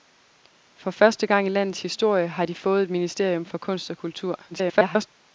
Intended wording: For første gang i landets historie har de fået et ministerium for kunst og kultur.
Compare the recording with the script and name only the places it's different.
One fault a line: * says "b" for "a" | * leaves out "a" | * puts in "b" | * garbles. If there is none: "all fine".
* garbles